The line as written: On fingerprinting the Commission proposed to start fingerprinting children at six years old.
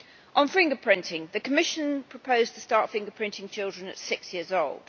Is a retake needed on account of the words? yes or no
no